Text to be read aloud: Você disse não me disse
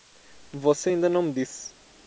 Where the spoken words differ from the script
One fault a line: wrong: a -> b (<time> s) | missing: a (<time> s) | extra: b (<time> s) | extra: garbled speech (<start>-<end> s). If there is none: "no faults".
wrong: disse -> ainda (0.9 s)